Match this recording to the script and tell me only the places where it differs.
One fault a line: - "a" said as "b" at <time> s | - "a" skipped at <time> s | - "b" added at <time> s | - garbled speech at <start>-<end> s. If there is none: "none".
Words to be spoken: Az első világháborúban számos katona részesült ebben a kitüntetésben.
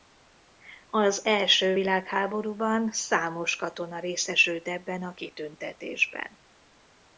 none